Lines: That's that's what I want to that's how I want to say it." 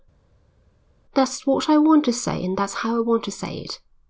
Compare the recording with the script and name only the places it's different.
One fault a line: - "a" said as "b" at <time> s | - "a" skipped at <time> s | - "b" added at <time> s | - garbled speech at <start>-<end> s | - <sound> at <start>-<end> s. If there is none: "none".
- "that's" skipped at 1.5 s
- "say and" added at 2.1 s